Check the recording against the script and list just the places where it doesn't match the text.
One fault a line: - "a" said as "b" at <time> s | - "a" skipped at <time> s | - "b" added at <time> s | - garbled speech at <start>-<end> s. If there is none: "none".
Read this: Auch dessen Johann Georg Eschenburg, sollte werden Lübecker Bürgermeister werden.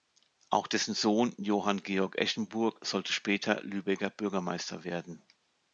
- "Sohn" added at 0.9 s
- "werden" said as "später" at 3.1 s